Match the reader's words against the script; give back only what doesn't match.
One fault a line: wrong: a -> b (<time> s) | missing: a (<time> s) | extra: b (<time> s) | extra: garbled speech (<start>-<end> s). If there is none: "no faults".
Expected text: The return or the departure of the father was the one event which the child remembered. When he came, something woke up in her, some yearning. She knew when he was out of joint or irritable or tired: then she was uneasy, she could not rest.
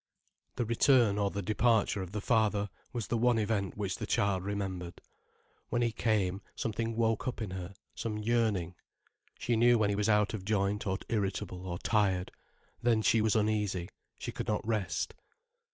no faults